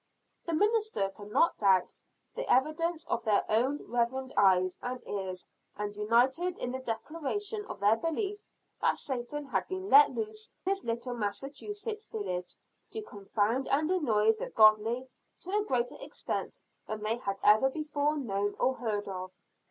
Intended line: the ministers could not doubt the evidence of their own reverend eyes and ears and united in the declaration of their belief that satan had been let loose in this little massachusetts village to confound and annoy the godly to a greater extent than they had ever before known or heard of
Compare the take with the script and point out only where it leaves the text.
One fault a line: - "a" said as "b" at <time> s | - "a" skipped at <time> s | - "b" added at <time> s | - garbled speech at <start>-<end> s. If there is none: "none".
- "in" skipped at 10.5 s